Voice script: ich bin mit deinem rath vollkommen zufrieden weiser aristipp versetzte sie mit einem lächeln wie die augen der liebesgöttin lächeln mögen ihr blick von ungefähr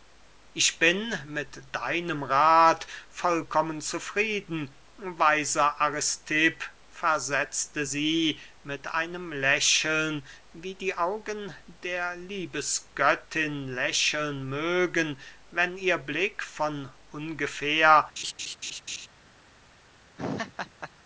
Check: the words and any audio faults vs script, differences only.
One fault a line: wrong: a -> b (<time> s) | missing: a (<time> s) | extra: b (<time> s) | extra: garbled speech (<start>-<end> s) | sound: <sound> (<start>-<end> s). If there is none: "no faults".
extra: wenn (15.5 s)
sound: laugh (18.2-19.1 s)
sound: laugh (20.2-20.9 s)